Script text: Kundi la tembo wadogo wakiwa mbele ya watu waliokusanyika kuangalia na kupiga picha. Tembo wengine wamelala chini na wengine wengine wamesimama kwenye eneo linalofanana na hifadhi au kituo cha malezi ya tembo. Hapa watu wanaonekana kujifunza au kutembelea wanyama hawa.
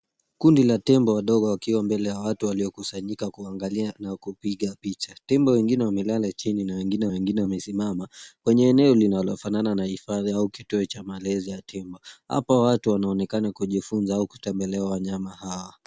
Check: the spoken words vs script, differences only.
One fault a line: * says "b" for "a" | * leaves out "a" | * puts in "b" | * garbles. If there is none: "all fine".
all fine